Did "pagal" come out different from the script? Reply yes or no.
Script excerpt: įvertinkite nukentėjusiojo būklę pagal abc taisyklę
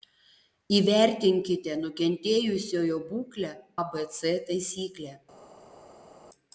yes